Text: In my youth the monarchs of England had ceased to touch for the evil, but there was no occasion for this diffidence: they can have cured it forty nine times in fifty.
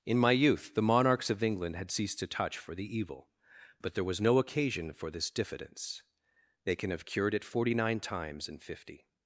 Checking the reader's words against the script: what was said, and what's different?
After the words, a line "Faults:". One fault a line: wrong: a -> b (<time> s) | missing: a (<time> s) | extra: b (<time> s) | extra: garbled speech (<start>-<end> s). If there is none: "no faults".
In my youth the monarchs of England had ceased to touch for the evil, but there was no occasion for this diffidence: they can have cured it forty nine times in fifty.
Faults:
no faults